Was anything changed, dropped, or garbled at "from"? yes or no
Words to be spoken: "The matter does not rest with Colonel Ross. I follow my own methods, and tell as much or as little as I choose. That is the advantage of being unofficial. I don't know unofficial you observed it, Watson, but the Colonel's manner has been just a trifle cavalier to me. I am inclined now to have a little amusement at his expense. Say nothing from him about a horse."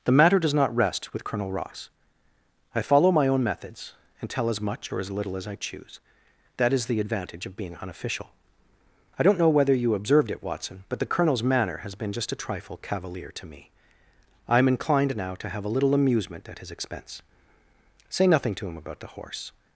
yes